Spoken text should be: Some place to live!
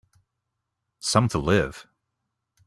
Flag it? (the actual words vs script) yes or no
yes